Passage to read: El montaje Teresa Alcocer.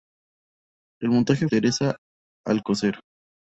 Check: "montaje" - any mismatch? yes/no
no